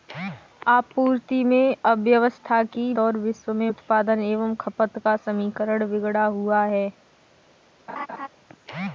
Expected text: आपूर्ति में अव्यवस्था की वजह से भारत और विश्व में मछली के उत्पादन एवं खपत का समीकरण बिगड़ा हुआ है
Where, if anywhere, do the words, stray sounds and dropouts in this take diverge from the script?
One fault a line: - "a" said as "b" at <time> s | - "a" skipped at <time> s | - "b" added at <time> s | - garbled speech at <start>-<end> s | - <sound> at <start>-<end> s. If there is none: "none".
- "वजह से भारत" skipped at 2.9 s
- "मछली के" skipped at 3.7 s
- laugh at 7.9-8.3 s